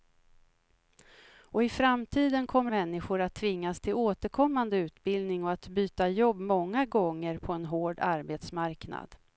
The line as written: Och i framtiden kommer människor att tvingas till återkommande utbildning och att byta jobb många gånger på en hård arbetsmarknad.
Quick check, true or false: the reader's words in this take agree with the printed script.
true